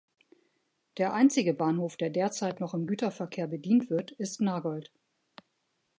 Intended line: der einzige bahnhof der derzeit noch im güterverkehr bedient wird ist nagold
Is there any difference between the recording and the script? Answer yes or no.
no